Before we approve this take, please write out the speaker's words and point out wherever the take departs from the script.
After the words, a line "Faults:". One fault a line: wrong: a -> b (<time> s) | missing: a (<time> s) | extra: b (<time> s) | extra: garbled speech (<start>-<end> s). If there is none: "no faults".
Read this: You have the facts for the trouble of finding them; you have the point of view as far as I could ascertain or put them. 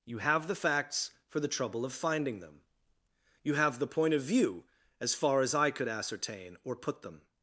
You have the facts for the trouble of finding them; you have the point of view as far as I could ascertain or put them.
Faults:
no faults